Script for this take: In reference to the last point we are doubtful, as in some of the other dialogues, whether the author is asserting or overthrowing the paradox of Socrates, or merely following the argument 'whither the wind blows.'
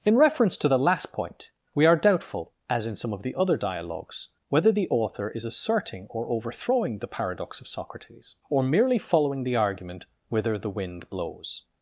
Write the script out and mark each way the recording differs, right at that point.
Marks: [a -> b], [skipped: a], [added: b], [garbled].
In reference to the last point we are doubtful, as in some of the other dialogues, whether the author is asserting or overthrowing the paradox of Socrates, or merely following the argument 'whither the wind blows.'